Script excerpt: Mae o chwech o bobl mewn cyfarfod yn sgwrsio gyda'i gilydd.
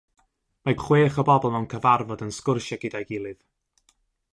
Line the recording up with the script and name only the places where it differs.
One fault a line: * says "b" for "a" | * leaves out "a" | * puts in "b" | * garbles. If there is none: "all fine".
all fine